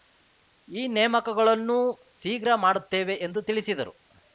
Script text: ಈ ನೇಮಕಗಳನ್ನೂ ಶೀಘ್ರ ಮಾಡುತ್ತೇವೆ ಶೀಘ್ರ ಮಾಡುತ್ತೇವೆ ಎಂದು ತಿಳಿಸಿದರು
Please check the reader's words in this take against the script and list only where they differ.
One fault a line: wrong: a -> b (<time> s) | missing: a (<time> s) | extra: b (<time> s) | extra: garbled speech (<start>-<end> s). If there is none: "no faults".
missing: ಶೀಘ್ರ ಮಾಡುತ್ತೇವೆ (3.1 s)